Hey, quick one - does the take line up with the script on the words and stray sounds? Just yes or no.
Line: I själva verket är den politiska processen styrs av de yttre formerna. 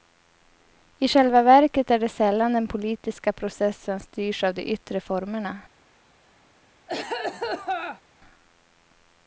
no